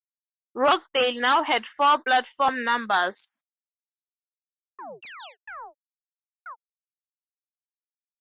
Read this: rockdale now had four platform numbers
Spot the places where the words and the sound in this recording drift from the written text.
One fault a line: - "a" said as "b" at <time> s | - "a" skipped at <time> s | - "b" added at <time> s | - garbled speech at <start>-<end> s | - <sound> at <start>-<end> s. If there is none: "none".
- chirp at 4.8-5.7 s
- chirp at 6.5-6.6 s